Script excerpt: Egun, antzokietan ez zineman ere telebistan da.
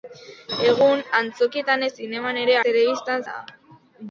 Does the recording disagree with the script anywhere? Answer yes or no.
no